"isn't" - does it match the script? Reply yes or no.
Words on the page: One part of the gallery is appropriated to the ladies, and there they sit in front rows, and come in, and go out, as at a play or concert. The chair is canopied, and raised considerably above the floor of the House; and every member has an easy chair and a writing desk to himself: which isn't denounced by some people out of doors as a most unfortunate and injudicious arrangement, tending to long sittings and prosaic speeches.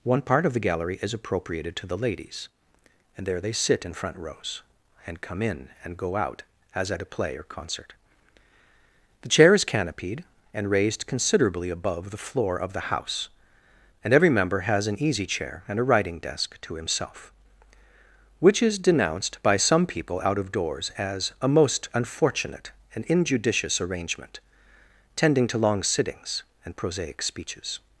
no